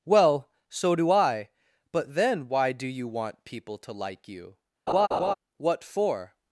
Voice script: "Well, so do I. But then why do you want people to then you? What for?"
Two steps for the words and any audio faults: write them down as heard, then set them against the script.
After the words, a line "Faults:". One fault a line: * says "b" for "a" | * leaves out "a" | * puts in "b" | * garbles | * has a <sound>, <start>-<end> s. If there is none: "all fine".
"Well, so do I. But then why do you want people to like you? What for?"
Faults:
* says "like" for "then"
* has a laugh, 4.9-5.3 s